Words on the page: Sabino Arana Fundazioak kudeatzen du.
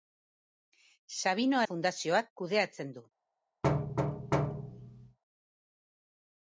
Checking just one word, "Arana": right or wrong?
wrong